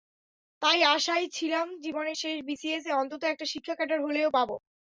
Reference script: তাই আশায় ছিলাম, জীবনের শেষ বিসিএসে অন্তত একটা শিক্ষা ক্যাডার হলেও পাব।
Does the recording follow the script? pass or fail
pass